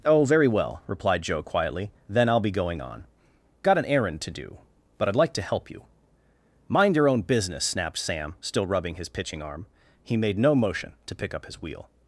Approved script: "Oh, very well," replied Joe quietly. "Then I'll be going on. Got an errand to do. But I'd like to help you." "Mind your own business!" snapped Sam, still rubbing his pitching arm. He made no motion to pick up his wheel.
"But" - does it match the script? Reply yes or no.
yes